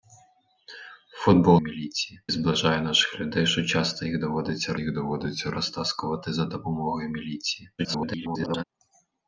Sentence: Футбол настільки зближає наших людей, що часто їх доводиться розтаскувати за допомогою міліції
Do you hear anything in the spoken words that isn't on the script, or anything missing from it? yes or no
yes